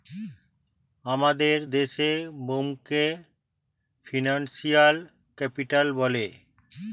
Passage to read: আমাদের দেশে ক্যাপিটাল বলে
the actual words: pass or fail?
fail